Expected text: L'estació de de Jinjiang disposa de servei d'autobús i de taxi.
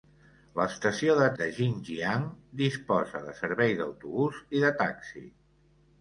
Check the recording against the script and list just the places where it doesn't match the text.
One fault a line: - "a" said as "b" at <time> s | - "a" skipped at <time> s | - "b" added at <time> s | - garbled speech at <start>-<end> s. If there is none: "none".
none